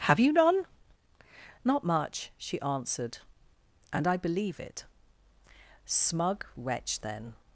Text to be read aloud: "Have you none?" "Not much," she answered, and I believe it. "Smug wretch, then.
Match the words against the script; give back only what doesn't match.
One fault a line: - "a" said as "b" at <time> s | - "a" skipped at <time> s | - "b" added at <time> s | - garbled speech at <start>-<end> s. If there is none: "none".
none